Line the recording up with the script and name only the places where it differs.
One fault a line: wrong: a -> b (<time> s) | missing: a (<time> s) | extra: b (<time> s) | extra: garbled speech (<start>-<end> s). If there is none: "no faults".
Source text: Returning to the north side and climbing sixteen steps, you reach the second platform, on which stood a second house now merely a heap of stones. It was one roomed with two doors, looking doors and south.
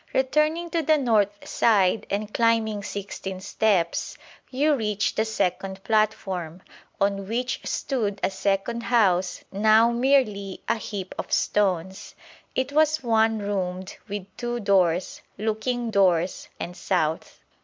no faults